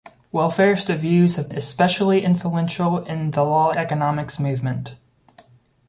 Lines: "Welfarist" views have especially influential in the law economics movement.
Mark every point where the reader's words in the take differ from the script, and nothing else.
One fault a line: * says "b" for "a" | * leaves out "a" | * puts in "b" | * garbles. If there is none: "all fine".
all fine